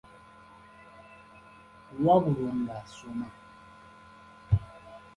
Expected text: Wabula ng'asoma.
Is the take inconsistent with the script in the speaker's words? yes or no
no